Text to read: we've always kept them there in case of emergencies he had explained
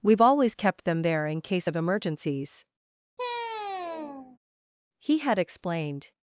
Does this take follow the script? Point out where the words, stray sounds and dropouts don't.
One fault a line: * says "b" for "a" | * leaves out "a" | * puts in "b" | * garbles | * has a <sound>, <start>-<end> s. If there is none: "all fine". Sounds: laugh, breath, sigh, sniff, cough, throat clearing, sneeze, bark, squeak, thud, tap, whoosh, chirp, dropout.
* has a sigh, 3.2-4.4 s